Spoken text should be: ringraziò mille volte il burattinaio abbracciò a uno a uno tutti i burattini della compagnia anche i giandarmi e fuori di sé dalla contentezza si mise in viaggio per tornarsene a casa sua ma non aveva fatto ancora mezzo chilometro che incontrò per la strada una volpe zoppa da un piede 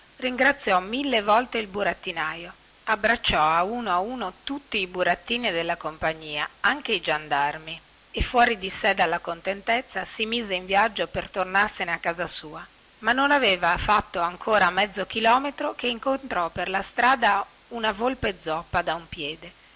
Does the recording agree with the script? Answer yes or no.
yes